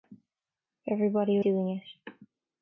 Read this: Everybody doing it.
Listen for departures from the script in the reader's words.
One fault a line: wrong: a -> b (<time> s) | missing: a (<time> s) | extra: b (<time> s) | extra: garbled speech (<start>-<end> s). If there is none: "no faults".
no faults